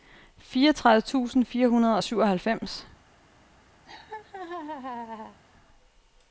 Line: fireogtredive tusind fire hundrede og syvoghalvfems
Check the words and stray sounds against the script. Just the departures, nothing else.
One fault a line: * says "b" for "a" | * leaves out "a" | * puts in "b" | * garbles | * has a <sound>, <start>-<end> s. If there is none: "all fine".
* has a laugh, 3.9-5.4 s